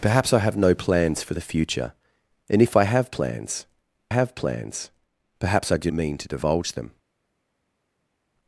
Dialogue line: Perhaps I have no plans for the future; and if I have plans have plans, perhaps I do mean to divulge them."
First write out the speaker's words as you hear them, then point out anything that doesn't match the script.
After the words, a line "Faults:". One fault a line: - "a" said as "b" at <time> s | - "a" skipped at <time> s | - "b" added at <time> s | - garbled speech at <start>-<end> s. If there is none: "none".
Perhaps I have no plans for the future; and if I have plans have plans, perhaps I do mean to divulge them."
Faults:
none